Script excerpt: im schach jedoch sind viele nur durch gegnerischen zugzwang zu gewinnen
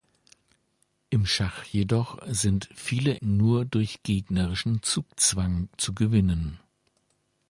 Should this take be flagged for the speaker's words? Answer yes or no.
no